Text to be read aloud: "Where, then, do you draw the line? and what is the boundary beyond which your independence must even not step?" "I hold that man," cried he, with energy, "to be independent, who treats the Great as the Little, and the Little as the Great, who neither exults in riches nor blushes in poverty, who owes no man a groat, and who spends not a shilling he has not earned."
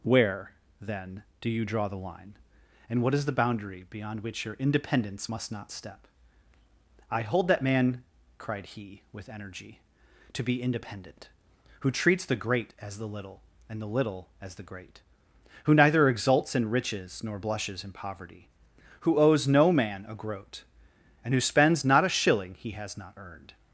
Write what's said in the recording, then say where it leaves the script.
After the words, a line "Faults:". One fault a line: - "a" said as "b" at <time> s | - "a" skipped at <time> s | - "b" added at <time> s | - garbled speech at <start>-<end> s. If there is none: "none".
"Where, then, do you draw the line? and what is the boundary beyond which your independence must not step?" "I hold that man," cried he, with energy, "to be independent, who treats the Great as the Little, and the Little as the Great, who neither exults in riches nor blushes in poverty, who owes no man a groat, and who spends not a shilling he has not earned."
Faults:
- "even" skipped at 5.5 s